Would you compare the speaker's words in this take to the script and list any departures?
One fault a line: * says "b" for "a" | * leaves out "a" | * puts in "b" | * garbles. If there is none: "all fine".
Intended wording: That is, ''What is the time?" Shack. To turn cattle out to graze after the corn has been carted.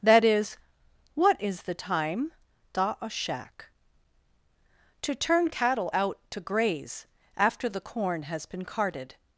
* puts in "da a"